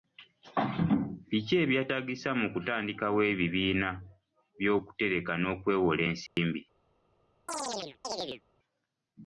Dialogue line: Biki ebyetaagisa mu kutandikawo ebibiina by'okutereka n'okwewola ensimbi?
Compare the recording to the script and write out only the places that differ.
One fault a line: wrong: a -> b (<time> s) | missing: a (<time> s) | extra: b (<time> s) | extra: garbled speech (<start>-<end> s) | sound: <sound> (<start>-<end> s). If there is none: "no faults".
sound: dropout (6.3-6.4 s)
sound: chirp (7.5-8.4 s)